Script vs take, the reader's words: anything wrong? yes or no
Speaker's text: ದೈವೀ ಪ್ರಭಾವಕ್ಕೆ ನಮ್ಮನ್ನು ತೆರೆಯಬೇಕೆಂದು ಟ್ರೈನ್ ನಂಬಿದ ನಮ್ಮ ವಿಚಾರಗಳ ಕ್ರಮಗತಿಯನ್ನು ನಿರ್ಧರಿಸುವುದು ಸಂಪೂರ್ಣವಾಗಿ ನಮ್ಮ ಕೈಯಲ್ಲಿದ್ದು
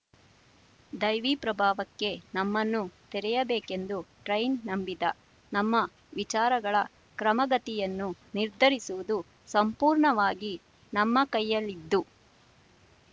no